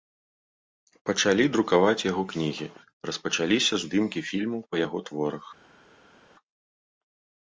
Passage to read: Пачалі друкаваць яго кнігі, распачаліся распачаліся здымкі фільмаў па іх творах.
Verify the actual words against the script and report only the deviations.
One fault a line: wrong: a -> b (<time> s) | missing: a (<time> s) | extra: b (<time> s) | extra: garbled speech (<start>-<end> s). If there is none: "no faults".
missing: распачаліся (3.7 s)
wrong: іх -> яго (4.8 s)